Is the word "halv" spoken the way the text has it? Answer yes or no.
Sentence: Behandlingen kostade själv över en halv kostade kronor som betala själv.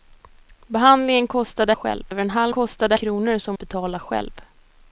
yes